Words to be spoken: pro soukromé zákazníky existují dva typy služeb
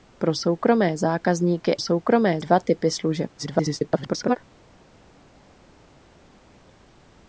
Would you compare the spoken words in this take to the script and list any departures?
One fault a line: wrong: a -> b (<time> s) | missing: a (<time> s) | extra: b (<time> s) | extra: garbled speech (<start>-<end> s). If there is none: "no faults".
wrong: existují -> soukromé (1.8 s)
extra: garbled speech (3.4-4.4 s)